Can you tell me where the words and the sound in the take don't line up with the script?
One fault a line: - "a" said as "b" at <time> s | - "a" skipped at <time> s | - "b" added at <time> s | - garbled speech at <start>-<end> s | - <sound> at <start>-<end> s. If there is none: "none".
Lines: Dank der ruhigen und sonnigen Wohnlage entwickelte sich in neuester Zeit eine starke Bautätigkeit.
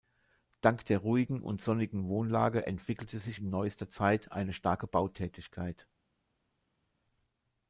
none